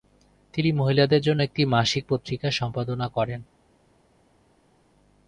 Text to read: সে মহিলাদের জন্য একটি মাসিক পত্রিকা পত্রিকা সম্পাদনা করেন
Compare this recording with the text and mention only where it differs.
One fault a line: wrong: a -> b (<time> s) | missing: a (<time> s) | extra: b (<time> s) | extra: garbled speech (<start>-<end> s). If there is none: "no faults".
wrong: সে -> তিনি (0.5 s)
missing: পত্রিকা (2.5 s)